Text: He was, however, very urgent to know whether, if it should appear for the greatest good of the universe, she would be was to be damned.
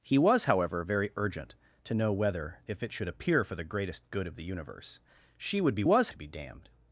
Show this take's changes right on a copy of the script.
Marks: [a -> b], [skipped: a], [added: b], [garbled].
He was, however, very urgent to know whether, if it should appear for the greatest good of the universe, she would be was to be damned.